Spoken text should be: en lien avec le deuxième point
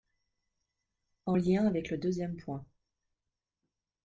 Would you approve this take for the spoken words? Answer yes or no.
yes